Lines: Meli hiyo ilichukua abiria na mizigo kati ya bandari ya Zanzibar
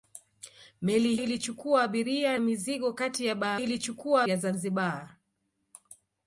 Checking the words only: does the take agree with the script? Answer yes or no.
no